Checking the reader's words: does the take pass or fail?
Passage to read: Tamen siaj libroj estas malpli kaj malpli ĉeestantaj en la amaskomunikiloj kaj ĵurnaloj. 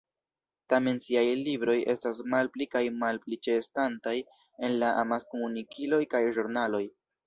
pass